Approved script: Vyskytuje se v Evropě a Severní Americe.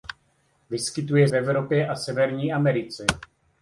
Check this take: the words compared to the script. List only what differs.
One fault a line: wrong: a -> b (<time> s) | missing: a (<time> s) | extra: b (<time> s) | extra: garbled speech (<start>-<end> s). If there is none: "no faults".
missing: se (1.3 s)